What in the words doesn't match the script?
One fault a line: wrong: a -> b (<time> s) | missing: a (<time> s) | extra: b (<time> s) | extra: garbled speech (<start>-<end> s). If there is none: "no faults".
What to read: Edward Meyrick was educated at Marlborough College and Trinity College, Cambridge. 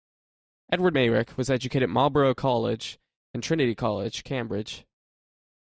no faults